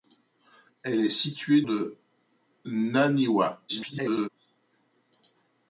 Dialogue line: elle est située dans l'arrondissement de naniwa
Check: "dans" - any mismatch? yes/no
yes